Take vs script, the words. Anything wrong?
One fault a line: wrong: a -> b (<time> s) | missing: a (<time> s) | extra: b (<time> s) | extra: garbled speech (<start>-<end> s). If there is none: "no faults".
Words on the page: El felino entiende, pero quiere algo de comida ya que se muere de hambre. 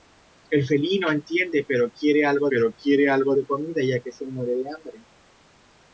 extra: pero quiere algo (2.5 s)